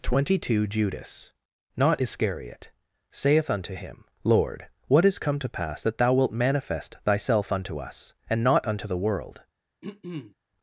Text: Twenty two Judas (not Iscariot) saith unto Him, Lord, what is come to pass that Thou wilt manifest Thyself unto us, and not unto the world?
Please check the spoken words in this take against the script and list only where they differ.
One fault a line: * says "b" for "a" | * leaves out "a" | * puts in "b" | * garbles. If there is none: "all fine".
all fine